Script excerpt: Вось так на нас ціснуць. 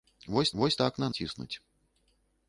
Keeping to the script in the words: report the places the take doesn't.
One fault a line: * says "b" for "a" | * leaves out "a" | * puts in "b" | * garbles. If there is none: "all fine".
* puts in "вось"
* leaves out "нас"